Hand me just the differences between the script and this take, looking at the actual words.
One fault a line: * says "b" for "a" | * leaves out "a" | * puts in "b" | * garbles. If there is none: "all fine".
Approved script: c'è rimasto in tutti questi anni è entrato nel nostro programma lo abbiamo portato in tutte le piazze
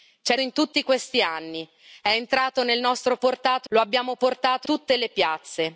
* leaves out "rimasto"
* says "portato" for "programma"
* leaves out "in"